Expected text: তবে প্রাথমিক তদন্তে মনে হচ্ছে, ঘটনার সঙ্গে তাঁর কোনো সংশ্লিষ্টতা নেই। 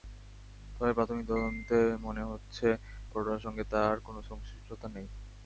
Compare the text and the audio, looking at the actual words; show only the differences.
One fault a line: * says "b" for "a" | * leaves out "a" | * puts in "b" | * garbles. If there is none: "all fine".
all fine